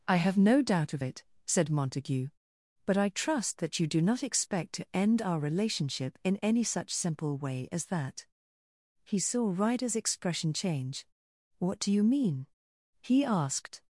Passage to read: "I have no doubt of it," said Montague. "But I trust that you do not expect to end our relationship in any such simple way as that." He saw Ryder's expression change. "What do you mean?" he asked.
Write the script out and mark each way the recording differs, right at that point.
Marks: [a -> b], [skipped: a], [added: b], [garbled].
"I have no doubt of it," said Montague. "But I trust that you do not expect to end our relationship in any such simple way as that." He saw Ryder's expression change. "What do you mean?" he asked.